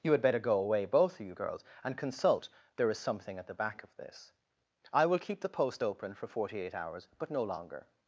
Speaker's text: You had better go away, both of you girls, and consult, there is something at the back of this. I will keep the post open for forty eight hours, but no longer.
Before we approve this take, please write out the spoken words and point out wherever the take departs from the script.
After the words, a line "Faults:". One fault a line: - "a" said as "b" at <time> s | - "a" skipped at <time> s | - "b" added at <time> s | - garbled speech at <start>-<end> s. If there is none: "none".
You had better go away, both of you girls, and consult, there is something at the back of this. I will keep the post open for forty eight hours, but no longer.
Faults:
none